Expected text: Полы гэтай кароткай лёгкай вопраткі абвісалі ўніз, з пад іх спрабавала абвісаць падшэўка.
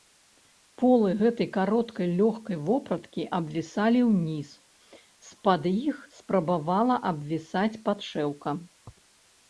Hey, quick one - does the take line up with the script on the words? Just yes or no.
yes